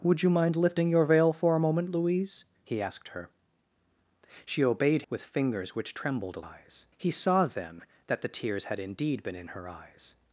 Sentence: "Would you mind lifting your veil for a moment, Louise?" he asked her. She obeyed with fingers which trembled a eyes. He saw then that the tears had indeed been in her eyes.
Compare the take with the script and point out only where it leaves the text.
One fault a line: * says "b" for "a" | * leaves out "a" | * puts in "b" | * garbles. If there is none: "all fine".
all fine